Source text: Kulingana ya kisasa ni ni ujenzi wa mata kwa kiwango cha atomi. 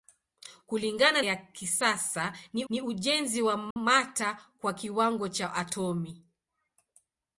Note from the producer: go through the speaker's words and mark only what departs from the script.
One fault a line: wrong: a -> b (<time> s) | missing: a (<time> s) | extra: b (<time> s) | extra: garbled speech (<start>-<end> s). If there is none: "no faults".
no faults